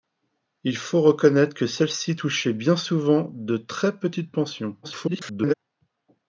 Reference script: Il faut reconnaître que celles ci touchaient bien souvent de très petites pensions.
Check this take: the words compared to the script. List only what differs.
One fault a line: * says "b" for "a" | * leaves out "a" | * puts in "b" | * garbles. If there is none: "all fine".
* garbles